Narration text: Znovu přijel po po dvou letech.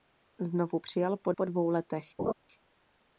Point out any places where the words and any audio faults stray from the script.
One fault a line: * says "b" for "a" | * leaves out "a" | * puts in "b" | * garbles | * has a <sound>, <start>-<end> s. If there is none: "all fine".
* has a laugh, 2.2-2.3 s